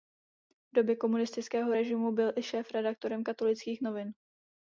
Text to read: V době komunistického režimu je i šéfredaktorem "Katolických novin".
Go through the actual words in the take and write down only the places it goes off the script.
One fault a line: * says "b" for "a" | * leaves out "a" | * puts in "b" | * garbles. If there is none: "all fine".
* says "byl" for "je"